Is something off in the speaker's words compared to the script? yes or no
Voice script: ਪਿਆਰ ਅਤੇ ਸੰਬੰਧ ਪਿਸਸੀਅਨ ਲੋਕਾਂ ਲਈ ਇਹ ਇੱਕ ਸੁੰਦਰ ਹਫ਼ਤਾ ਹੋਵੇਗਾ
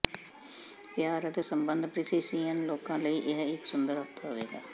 no